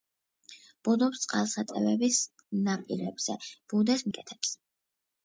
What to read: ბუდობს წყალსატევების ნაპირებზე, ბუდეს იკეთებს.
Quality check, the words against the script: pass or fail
pass